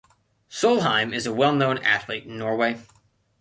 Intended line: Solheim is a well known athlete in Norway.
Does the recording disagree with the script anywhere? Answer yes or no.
no